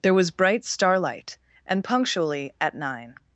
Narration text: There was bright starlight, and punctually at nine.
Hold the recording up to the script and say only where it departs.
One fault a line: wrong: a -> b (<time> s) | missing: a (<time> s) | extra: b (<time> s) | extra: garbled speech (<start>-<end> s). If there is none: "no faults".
no faults